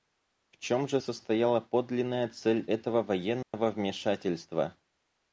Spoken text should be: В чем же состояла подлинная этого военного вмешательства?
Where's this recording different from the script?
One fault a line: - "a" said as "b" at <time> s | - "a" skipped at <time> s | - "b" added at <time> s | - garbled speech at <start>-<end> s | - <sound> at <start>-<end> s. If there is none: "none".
- "цель" added at 2.3 s
- dropout at 3.4-3.5 s